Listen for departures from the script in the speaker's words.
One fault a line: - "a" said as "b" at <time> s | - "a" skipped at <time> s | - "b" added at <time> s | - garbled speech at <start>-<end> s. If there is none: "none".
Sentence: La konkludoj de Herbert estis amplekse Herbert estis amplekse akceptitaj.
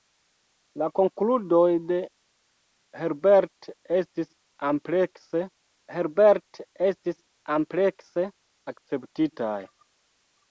none